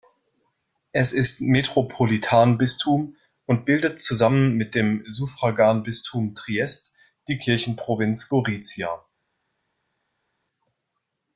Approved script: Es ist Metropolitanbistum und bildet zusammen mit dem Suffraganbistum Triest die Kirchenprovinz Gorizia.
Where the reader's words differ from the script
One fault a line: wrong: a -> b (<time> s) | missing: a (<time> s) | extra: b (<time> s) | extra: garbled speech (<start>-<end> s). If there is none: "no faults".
no faults